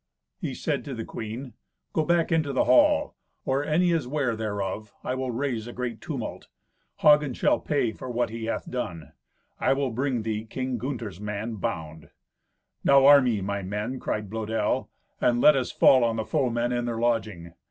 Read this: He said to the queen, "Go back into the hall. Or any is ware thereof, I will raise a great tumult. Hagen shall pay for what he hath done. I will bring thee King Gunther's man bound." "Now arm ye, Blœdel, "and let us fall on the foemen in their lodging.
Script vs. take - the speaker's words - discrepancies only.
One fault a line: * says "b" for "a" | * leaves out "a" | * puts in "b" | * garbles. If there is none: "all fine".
* puts in "my men cried"